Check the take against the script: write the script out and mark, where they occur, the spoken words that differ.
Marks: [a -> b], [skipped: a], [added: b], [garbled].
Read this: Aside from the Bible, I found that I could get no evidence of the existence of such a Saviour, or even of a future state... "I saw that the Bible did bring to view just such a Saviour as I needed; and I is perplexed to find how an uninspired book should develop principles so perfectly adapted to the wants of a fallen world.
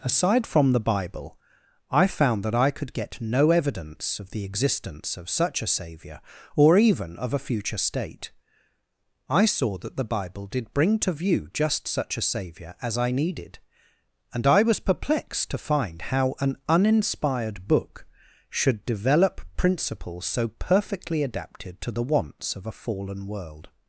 Aside from the Bible, I found that I could get no evidence of the existence of such a Saviour, or even of a future state... "I saw that the Bible did bring to view just such a Saviour as I needed; and I [is -> was] perplexed to find how an uninspired book should develop principles so perfectly adapted to the wants of a fallen world.